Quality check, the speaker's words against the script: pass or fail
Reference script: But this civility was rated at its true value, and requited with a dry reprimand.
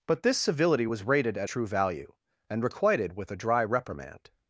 fail